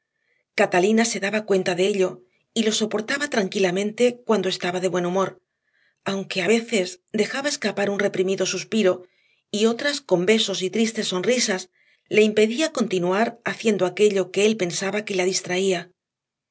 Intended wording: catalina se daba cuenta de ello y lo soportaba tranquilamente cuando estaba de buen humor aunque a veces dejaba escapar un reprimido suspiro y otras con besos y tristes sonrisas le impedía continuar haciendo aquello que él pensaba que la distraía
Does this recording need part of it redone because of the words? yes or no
no